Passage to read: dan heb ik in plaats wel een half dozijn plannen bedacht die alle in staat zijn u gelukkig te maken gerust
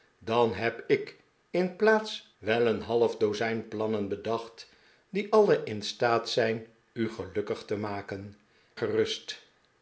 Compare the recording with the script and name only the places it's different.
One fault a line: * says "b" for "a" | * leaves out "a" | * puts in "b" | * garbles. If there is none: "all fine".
all fine